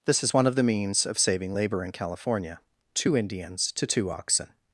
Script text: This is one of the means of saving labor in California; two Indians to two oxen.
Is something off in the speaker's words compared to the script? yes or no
no